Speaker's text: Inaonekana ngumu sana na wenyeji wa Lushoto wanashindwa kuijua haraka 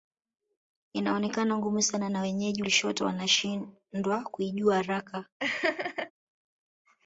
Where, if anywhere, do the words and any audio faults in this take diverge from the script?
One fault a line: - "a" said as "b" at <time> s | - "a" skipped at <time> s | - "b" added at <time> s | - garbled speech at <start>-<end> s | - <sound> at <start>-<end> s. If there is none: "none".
- "wa" skipped at 2.6 s
- laugh at 5.4-6.1 s